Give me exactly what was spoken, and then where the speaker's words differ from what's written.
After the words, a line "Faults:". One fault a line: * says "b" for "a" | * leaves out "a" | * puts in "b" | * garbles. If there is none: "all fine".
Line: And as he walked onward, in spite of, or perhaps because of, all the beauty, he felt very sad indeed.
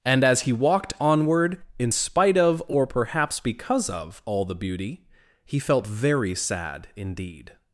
And as he walked onward, in spite of, or perhaps because of, all the beauty, he felt very sad indeed.
Faults:
all fine